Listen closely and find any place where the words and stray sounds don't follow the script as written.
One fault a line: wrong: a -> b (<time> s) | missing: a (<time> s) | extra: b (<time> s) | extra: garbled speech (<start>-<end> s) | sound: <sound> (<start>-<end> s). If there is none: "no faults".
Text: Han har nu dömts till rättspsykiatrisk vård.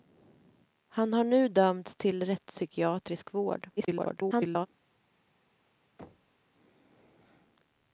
extra: garbled speech (3.8-4.7 s)
sound: thud (6.0-6.4 s)